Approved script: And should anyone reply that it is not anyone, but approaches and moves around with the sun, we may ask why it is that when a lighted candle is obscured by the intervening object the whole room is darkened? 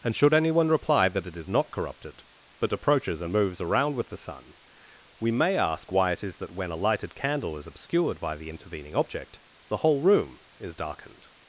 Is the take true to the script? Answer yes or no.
no